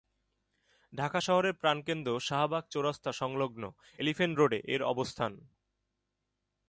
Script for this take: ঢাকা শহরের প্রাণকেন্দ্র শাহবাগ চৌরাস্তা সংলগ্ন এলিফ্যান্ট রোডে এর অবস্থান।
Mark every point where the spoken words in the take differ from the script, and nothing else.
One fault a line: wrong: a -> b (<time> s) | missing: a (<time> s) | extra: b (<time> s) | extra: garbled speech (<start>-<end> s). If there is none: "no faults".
no faults